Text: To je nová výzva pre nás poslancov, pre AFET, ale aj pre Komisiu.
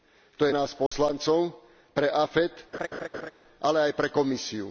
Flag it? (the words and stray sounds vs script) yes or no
yes